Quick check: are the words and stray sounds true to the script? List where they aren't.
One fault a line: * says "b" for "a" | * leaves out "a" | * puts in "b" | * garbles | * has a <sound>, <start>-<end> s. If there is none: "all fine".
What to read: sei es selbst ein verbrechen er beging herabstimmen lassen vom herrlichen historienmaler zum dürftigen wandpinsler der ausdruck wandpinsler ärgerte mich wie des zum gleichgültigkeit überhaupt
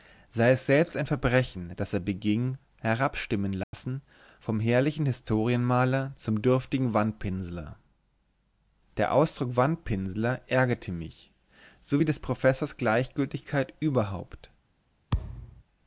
* puts in "das"
* has a dropout, 3.6-3.7 s
* puts in "so"
* says "professors" for "zum"
* has a thud, 15.1-15.6 s